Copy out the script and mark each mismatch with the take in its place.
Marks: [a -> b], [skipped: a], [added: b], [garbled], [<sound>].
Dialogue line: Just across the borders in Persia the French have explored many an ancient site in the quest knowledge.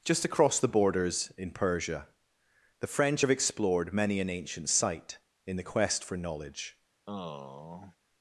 Just across the borders in Persia the French have explored many an ancient site in the quest [added: for] knowledge. [sigh]